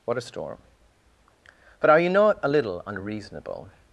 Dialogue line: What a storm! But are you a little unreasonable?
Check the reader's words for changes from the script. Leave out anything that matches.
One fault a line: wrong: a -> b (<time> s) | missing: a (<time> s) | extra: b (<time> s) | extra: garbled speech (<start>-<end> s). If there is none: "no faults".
extra: not (2.1 s)